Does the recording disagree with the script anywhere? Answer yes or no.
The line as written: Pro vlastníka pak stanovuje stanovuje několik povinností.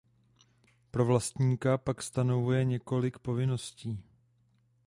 yes